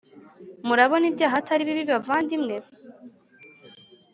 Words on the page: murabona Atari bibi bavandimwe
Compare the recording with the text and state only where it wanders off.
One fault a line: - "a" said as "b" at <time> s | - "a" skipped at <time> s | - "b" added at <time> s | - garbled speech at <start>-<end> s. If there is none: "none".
- "ibyaha" added at 1.1 s